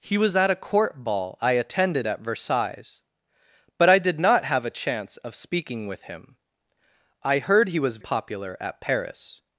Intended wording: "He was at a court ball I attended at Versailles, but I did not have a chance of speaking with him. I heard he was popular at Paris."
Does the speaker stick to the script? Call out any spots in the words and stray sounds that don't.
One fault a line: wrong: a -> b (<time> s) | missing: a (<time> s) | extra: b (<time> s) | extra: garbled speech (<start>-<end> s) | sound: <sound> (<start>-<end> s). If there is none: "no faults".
no faults